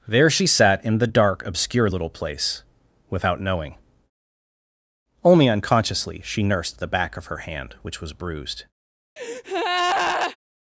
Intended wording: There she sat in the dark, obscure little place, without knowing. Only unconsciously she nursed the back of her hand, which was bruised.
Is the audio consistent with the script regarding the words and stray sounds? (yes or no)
no